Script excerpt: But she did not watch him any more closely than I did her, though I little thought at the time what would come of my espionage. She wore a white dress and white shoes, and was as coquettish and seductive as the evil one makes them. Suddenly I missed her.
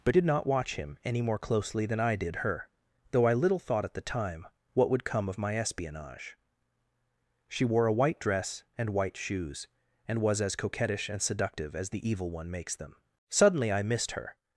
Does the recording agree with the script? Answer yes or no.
no